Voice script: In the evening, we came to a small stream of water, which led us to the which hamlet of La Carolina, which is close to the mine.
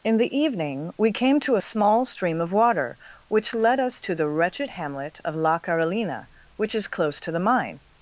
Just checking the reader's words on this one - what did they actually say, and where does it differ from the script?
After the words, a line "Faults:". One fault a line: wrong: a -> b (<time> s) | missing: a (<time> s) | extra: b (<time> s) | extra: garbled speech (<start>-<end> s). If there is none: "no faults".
In the evening, we came to a small stream of water, which led us to the wretched hamlet of La Carolina, which is close to the mine.
Faults:
wrong: which -> wretched (4.3 s)